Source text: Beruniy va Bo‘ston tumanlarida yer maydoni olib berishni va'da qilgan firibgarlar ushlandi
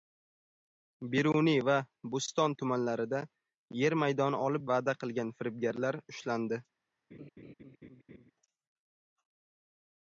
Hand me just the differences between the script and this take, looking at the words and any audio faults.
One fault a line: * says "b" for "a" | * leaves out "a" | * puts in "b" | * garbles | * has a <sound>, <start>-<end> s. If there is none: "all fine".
* leaves out "berishni"
* has a laugh, 7.1-8.3 s